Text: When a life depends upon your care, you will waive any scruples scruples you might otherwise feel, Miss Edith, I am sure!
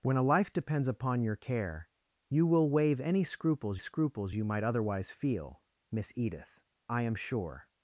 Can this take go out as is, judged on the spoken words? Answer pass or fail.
pass